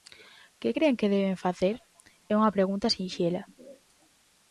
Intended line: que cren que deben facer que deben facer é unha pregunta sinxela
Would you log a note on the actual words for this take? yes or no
yes